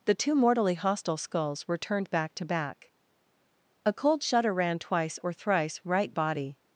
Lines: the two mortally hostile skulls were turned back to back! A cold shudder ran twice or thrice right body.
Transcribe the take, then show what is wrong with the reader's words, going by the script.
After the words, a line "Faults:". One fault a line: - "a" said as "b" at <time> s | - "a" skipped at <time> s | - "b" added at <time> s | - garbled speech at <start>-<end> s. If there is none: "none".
the two mortally hostile skulls were turned back to back! A cold shudder ran twice or thrice right body.
Faults:
none